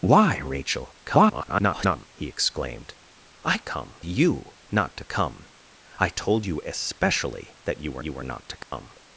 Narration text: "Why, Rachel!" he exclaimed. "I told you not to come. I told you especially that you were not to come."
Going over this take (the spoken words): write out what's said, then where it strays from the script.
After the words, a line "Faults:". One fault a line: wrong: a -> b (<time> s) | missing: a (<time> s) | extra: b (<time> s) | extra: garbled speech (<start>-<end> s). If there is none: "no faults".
"Why, Rachel!" [garbled] he exclaimed. "I come you not to come. I told you especially that you were you were not to come."
Faults:
extra: garbled speech (1.0-2.1 s)
wrong: told -> come (3.6 s)
extra: you were (8.0 s)